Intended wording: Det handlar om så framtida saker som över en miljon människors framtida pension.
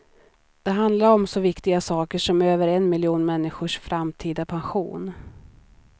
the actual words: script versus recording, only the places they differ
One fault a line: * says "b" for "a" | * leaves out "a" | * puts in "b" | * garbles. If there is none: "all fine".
* says "viktiga" for "framtida"